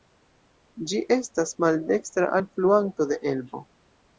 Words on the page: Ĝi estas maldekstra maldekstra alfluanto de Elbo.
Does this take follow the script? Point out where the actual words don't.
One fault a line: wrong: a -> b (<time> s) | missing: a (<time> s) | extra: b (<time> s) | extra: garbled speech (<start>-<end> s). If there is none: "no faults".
missing: maldekstra (2.3 s)